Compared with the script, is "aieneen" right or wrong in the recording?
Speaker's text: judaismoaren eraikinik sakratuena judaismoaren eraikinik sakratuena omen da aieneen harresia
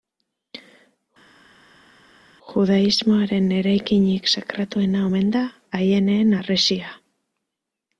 right